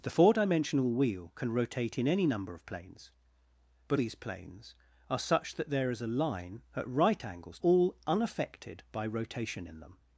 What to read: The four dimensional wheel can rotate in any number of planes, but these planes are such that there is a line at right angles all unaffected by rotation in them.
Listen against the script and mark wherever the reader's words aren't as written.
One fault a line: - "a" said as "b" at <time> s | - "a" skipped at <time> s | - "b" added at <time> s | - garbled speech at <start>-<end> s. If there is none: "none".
none